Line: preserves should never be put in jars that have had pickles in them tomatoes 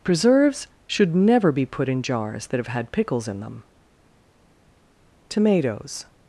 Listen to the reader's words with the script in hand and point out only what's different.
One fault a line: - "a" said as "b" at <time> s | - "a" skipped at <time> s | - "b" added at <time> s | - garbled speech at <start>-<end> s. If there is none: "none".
none